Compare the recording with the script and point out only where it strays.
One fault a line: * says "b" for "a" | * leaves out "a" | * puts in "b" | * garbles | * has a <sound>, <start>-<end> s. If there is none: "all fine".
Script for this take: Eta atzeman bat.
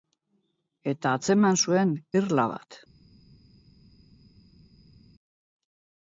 * puts in "zuen irla"